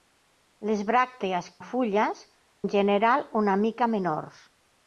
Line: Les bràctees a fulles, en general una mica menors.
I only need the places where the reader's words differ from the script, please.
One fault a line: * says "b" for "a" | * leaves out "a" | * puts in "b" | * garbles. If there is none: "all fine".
all fine